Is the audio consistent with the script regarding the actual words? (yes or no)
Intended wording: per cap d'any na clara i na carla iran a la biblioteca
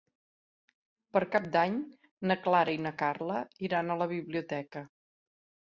yes